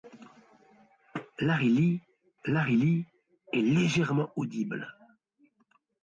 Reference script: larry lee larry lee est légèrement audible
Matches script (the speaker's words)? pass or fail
pass